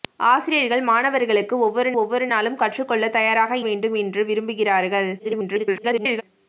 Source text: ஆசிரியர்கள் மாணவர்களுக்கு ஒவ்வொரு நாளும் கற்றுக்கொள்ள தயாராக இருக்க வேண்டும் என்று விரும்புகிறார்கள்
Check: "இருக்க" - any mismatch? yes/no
yes